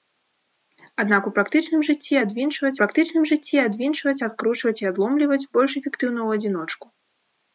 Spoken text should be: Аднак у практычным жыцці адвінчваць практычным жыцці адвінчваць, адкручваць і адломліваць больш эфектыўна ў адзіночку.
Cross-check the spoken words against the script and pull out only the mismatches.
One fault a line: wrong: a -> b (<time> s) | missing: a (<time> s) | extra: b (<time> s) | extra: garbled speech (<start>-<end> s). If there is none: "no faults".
no faults